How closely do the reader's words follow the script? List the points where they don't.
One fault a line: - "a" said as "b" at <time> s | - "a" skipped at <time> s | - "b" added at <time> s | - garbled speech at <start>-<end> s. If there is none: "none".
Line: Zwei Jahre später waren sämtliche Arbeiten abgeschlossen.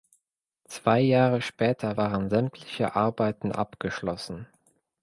none